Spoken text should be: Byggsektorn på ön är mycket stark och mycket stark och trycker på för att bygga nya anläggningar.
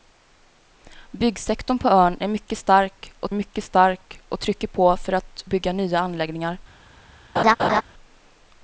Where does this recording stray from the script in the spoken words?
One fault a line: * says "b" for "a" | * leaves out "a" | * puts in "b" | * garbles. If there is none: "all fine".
all fine